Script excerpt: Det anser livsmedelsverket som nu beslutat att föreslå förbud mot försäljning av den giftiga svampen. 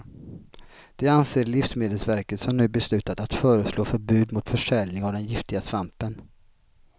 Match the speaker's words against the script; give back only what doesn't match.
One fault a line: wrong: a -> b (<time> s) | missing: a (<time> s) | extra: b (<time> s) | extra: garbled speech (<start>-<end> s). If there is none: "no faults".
no faults